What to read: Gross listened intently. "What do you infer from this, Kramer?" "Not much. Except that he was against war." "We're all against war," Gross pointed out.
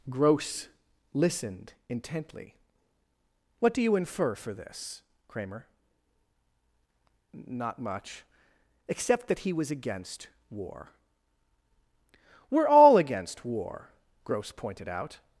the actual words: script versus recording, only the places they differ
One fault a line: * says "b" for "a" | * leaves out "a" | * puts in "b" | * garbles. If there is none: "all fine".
* says "for" for "from"